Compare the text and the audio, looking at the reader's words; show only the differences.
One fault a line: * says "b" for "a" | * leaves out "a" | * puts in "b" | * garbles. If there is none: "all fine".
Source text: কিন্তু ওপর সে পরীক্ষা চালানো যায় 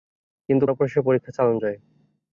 all fine